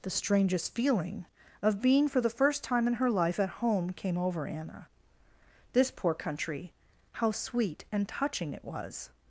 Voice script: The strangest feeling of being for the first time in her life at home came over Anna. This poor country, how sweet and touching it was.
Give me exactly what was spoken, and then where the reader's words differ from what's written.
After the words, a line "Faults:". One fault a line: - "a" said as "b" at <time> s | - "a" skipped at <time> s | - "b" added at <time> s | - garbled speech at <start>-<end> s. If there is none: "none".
The strangest feeling of being for the first time in her life at home came over Anna. This poor country, how sweet and touching it was.
Faults:
none